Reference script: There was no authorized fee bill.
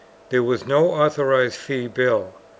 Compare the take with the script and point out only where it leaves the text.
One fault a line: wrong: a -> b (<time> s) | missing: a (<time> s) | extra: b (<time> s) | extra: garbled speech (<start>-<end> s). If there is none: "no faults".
no faults